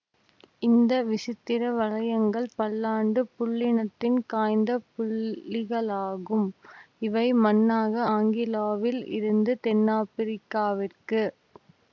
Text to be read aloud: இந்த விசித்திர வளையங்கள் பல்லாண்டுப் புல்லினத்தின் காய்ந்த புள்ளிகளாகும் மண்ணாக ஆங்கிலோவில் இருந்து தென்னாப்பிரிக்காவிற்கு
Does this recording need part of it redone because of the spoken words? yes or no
yes